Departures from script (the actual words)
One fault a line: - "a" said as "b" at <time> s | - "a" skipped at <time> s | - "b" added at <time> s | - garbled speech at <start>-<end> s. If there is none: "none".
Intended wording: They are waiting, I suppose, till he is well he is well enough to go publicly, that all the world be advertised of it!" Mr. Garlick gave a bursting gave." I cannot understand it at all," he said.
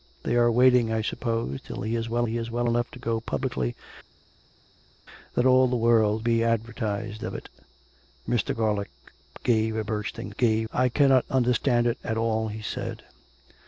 none